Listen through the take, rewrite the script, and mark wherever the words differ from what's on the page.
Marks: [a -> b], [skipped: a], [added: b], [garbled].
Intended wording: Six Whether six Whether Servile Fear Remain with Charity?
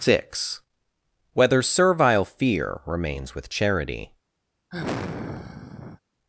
Six Whether [skipped: six Whether] Servile Fear [Remain -> Remains] with Charity?